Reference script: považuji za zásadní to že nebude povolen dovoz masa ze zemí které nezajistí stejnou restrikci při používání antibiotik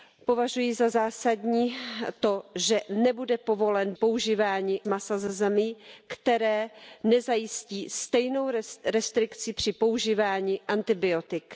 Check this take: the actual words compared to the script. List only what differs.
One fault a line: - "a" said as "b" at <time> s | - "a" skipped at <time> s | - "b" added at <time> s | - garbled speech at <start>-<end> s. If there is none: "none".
- "dovoz" said as "používání" at 3.9 s